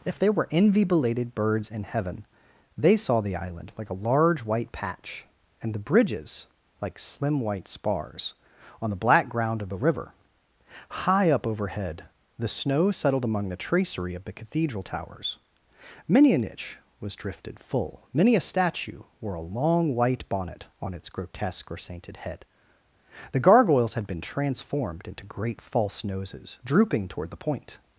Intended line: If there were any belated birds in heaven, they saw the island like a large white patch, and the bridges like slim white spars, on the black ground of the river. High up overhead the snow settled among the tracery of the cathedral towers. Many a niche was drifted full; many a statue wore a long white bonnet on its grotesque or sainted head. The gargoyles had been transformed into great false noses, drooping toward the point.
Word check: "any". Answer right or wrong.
wrong